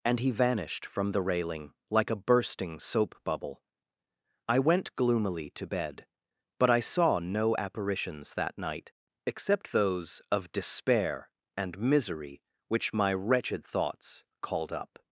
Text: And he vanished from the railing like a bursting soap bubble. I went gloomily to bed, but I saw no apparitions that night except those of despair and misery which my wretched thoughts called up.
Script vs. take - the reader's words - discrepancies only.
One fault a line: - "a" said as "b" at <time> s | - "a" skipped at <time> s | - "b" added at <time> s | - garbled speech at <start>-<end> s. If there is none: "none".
none